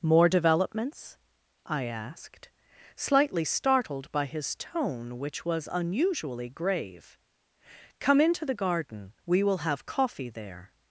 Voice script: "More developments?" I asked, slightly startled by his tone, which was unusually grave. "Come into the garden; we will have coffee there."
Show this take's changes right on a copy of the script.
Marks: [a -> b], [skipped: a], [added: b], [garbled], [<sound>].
"More developments?" I asked, slightly startled by his tone, which was unusually grave. "Come into the garden; we will have coffee there."